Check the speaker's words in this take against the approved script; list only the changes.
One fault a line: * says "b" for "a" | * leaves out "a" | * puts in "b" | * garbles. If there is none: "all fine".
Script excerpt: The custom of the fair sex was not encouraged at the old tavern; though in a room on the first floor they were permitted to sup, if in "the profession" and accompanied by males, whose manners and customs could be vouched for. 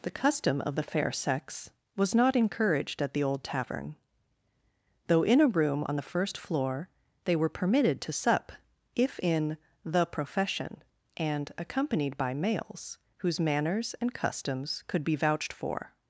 all fine